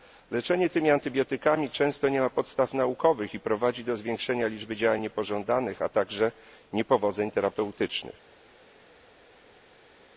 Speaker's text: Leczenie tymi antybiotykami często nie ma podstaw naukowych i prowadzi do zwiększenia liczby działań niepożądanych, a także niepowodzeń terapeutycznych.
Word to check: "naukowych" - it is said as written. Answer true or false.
true